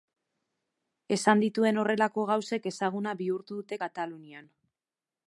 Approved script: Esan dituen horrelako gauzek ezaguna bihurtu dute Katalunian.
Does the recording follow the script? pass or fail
pass